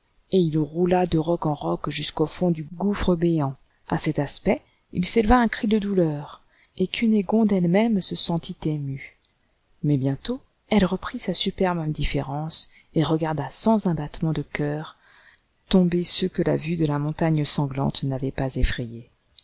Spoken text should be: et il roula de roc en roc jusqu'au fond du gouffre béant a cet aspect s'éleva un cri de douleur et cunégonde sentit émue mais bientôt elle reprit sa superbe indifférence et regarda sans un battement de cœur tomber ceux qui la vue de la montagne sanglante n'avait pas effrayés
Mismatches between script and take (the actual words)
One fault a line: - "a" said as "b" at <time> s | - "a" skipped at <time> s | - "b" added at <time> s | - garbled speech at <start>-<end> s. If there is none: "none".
- "il" added at 4.9 s
- "elle même se" added at 7.5 s
- "qui" said as "que" at 16.3 s